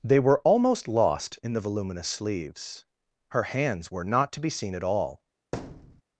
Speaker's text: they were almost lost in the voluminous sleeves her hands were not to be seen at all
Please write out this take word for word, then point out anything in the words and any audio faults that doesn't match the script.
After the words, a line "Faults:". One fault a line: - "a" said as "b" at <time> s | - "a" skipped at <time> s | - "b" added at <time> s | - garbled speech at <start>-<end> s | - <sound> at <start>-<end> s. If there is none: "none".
they were almost lost in the voluminous sleeves her hands were not to be seen at all
Faults:
- thud at 5.5-6.0 s